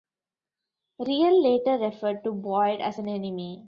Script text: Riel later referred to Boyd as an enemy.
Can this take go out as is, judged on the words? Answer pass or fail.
pass